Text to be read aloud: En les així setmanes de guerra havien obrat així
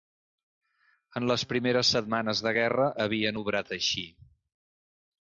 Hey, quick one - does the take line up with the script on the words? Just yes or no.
no